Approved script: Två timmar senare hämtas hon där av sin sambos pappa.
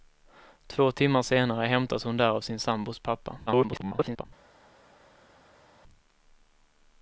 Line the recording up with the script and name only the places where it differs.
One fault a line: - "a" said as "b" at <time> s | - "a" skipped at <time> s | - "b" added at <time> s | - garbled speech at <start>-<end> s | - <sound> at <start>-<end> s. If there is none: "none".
- garbled speech at 3.5-4.3 s